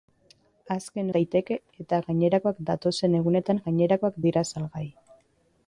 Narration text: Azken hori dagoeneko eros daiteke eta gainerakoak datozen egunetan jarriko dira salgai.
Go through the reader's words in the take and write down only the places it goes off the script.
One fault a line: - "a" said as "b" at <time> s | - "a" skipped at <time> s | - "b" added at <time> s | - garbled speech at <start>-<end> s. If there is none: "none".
- "hori dagoeneko eros" skipped at 1.1 s
- "jarriko" said as "gainerakoak" at 3.6 s